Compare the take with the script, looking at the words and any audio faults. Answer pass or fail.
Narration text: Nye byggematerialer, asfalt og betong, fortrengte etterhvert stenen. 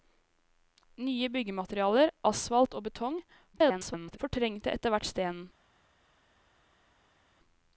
fail